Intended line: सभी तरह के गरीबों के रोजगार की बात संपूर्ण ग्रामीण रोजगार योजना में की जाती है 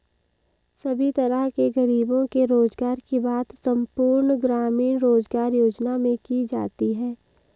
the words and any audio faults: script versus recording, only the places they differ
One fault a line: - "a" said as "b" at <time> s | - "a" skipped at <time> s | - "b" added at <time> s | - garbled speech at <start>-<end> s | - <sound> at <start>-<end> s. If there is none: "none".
none